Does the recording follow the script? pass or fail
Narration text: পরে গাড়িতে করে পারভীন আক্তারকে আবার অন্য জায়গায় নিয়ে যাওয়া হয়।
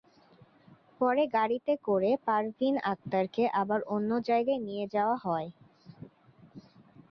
pass